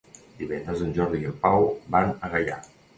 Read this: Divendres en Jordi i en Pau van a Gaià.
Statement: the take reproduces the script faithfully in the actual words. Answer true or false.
true